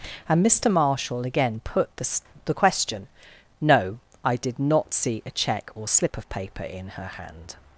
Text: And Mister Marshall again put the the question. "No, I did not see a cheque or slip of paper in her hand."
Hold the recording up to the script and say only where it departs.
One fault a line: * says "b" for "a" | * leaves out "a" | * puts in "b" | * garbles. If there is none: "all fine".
all fine